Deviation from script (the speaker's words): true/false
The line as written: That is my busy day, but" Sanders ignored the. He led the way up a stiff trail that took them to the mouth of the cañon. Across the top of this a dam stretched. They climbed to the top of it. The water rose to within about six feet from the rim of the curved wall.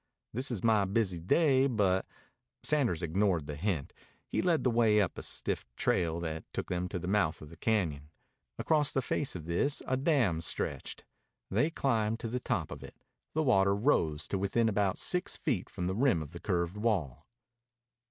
true